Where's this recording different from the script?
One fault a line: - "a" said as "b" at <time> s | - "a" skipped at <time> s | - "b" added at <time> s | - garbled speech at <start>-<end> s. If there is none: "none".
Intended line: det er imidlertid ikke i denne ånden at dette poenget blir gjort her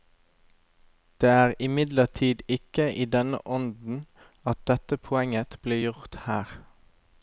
none